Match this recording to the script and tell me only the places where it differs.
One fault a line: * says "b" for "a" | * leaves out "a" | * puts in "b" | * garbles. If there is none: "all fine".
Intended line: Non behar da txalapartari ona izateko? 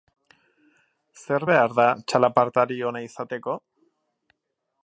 * says "Zer" for "Non"